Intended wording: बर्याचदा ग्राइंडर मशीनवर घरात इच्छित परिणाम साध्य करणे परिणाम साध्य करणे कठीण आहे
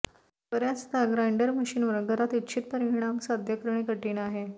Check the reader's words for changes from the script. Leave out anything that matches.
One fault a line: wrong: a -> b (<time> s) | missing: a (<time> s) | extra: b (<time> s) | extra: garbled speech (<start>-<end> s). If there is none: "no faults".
missing: परिणाम साध्य करणे (3.8 s)